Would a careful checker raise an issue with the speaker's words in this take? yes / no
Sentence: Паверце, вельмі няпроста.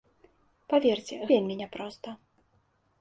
no